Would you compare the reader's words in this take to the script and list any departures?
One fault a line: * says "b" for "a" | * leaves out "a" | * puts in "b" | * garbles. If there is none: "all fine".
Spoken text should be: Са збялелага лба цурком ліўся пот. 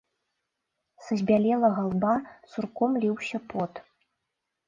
all fine